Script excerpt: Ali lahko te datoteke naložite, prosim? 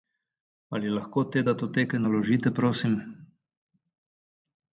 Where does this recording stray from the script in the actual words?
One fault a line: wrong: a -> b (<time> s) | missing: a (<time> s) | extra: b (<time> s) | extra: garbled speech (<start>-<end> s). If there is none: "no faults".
no faults